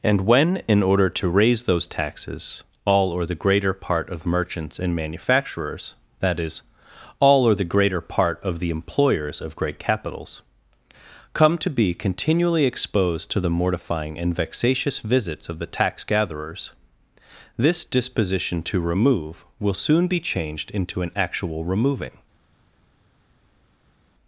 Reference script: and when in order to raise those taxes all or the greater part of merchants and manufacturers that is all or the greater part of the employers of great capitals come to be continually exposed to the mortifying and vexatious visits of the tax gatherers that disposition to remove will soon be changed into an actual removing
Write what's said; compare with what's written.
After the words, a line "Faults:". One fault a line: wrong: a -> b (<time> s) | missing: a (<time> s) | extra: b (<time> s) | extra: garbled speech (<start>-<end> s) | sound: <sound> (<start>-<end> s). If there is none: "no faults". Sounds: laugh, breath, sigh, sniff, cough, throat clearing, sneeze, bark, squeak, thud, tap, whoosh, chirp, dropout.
and when in order to raise those taxes all or the greater part of merchants and manufacturers that is all or the greater part of the employers of great capitals come to be continually exposed to the mortifying and vexatious visits of the tax gatherers this disposition to remove will soon be changed into an actual removing
Faults:
wrong: that -> this (17.6 s)